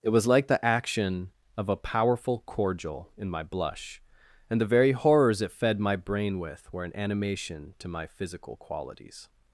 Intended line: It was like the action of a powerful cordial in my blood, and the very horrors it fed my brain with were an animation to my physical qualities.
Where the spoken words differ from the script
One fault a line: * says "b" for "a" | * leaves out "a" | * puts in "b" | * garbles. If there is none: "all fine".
* says "blush" for "blood"